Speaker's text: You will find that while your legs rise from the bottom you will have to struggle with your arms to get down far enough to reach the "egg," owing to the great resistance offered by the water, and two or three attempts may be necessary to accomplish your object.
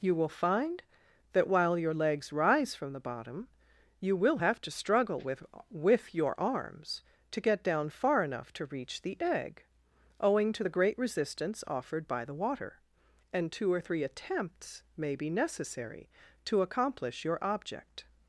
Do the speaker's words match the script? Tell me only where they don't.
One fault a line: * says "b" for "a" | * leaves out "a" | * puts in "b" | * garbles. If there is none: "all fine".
* puts in "with"